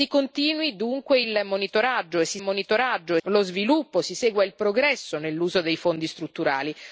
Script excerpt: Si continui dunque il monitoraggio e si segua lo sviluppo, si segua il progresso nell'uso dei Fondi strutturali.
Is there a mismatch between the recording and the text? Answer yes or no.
yes